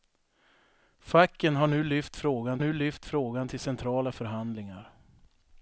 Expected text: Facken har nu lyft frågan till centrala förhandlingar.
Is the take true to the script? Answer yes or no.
no